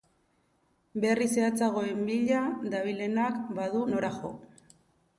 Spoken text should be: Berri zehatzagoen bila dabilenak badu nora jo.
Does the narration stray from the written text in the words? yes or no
no